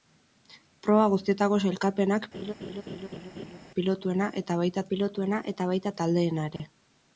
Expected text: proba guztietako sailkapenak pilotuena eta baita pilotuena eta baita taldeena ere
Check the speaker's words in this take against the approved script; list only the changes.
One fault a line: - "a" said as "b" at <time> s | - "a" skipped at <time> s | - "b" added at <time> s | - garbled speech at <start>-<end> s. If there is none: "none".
none